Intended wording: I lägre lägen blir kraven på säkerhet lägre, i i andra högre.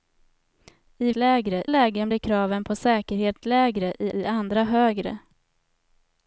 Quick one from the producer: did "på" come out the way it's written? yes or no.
yes